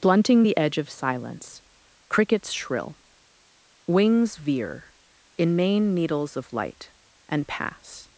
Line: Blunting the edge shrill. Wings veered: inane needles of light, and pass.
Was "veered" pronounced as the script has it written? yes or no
no